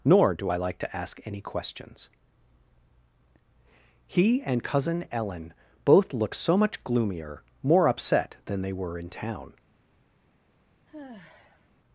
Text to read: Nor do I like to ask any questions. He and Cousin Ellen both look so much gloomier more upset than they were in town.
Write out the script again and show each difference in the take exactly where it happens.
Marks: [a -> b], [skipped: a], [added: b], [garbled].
Nor do I like to ask any questions. He and Cousin Ellen both look so much gloomier more upset than they were in town.